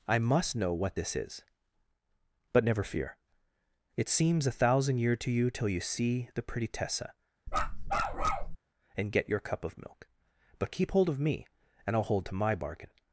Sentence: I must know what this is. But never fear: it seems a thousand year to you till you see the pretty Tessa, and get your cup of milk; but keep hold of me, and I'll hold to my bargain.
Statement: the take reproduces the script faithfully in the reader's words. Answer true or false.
true